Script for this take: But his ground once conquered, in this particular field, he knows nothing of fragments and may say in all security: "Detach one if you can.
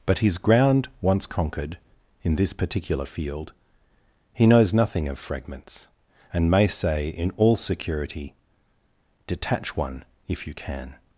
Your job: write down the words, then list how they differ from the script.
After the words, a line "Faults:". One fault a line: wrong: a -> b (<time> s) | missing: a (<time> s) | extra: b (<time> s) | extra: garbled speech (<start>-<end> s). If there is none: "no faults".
But his ground once conquered, in this particular field, he knows nothing of fragments and may say in all security: "Detach one if you can.
Faults:
no faults